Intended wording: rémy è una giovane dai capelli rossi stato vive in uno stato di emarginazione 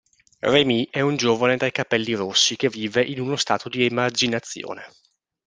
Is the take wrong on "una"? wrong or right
wrong